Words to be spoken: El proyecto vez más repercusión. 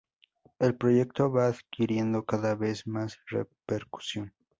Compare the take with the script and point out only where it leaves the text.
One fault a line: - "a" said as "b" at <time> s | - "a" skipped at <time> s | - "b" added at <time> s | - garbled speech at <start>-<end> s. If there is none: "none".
- "va adquiriendo cada" added at 1.3 s